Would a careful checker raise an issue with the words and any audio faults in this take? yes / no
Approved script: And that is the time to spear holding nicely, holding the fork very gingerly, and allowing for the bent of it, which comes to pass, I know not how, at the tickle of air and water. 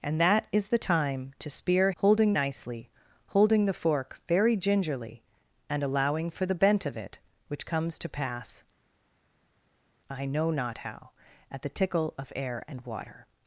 no